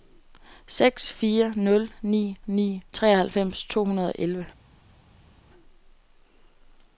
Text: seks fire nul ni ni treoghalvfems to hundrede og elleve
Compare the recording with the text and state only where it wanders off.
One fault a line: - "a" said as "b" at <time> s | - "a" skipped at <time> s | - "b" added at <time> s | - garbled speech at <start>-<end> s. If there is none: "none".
none